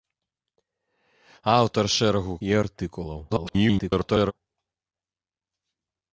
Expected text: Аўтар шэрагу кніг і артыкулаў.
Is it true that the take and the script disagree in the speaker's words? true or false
true